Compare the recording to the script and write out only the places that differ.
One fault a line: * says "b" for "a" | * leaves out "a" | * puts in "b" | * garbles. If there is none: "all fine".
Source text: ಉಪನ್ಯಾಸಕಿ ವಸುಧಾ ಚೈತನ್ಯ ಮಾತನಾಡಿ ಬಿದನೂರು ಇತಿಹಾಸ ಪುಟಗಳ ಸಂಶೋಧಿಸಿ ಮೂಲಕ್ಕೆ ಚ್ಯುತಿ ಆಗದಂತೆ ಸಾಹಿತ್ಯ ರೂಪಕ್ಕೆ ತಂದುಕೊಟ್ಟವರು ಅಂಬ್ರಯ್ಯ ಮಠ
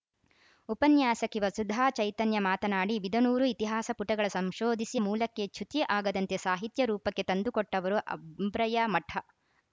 all fine